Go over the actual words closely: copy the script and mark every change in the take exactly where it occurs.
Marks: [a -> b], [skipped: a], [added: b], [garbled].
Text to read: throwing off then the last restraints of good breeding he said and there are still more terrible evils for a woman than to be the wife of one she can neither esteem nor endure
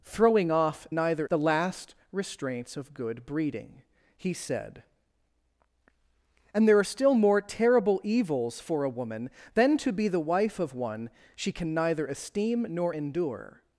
throwing off [then -> neither] the last restraints of good breeding he said and there are still more terrible evils for a woman than to be the wife of one she can neither esteem nor endure